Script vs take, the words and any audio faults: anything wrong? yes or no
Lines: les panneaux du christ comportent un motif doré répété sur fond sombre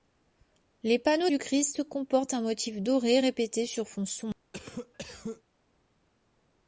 yes